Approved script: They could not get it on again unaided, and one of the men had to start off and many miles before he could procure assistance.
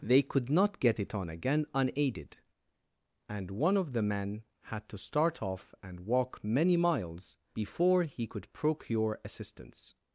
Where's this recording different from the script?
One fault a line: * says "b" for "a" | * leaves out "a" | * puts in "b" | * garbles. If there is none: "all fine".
* puts in "walk"